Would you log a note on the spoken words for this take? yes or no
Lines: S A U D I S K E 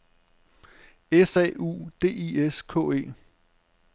no